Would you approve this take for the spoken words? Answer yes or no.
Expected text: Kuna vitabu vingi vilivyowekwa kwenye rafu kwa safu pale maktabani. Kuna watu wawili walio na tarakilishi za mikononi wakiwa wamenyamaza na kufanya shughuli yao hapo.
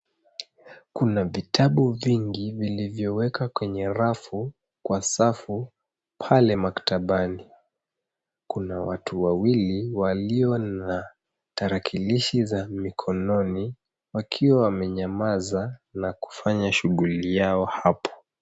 yes